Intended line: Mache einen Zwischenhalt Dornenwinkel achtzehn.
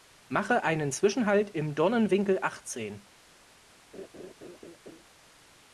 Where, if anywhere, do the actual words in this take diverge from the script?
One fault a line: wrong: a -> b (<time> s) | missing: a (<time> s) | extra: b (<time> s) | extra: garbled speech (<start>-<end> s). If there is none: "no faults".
extra: im (1.5 s)